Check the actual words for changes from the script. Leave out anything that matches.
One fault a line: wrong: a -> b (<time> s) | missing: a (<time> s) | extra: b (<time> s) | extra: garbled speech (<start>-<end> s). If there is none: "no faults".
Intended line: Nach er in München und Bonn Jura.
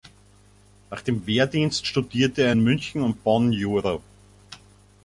extra: dem Wehrdienst studierte (1.0 s)